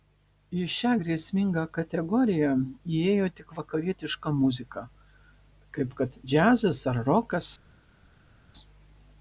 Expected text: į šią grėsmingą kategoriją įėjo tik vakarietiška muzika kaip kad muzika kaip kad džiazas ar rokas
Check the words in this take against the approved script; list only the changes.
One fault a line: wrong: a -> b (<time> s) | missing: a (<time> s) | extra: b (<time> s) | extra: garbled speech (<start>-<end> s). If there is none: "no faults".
missing: muzika kaip kad (6.2 s)